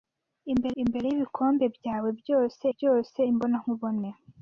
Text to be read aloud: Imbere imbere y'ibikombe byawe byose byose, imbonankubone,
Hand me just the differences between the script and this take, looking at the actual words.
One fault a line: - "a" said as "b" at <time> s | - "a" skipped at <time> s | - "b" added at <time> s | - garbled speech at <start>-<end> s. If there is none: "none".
none